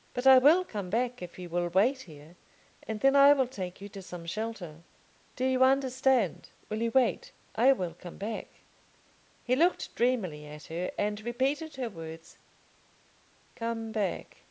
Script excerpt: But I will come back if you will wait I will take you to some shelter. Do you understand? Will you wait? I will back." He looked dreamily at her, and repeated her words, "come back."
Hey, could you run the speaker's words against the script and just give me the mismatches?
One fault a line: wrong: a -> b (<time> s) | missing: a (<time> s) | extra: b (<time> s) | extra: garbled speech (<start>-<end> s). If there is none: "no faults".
extra: here and then (2.0 s)
extra: come (7.9 s)